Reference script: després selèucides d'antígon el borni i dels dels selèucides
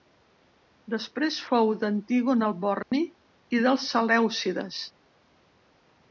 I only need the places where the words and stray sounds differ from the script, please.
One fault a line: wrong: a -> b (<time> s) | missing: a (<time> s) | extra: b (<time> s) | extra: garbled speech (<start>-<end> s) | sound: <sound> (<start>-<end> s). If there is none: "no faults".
wrong: selèucides -> fou (1.5 s)
sound: dropout (2.8-2.9 s)
missing: dels (3.9 s)